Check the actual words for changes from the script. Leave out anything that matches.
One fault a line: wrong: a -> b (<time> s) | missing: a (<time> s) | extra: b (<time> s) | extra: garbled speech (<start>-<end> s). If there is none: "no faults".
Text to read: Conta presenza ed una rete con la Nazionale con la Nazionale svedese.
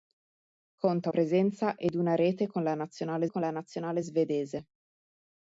no faults